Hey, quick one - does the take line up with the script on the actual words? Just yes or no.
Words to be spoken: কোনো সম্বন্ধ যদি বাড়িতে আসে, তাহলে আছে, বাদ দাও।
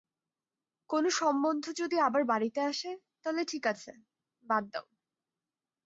no